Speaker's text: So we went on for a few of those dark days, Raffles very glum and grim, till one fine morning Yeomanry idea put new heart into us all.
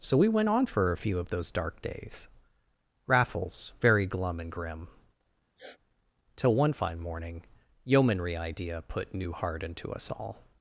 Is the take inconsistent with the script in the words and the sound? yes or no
yes